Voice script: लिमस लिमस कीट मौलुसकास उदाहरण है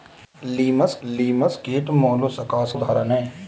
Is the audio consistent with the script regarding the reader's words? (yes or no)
yes